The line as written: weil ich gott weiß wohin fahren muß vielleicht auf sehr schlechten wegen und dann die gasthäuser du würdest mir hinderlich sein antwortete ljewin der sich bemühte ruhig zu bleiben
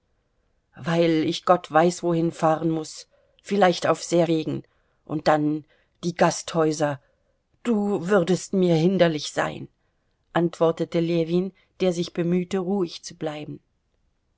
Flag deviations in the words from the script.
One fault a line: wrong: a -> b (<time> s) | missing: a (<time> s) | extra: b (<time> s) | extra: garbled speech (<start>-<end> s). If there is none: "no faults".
missing: schlechten (4.2 s)